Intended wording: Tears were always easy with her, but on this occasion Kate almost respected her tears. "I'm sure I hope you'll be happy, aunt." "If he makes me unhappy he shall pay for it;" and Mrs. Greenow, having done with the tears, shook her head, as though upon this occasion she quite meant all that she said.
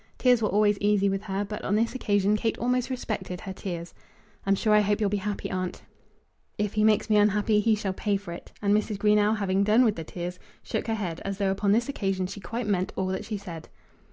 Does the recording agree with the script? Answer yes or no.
yes